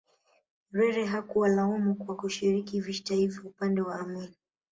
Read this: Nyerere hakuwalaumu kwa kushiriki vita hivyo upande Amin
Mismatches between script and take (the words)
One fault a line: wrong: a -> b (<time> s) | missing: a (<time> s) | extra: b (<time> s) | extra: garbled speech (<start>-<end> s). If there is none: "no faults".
extra: wa (3.8 s)